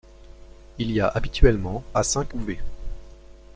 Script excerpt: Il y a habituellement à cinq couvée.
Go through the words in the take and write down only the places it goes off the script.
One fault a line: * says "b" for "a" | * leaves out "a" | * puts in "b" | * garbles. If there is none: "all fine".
all fine